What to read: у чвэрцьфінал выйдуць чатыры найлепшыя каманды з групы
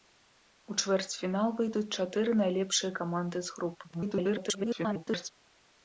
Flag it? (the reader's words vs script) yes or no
yes